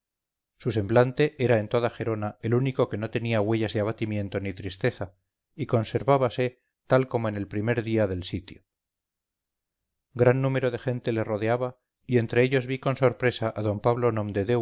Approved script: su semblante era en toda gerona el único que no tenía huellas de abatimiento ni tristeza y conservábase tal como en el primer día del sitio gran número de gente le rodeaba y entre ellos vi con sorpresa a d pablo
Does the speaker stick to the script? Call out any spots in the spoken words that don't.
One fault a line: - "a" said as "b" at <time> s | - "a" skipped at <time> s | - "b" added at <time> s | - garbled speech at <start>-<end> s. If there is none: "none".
none